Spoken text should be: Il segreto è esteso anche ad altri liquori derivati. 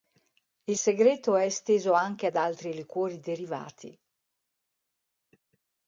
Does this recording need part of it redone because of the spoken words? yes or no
no